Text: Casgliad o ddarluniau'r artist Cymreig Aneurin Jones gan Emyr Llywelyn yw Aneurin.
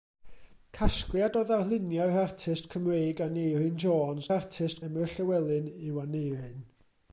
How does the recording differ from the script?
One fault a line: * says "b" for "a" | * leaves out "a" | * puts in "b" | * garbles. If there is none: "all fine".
* says "artist" for "gan"